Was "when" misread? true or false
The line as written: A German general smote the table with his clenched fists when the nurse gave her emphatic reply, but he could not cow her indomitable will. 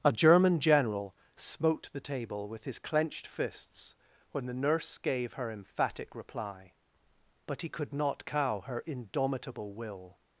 false